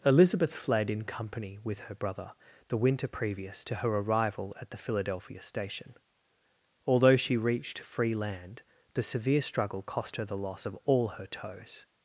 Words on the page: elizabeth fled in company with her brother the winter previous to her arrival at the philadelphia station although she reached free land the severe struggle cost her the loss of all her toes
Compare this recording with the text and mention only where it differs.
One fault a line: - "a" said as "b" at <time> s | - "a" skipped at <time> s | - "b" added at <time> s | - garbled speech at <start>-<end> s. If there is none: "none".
none